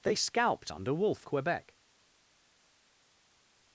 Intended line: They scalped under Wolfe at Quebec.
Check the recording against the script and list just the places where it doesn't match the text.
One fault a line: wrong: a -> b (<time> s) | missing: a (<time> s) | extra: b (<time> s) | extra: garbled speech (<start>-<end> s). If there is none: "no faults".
missing: at (1.3 s)